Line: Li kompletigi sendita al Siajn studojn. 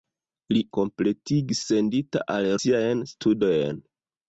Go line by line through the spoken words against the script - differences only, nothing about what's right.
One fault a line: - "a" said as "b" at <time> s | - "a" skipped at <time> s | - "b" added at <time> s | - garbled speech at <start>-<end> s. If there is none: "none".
none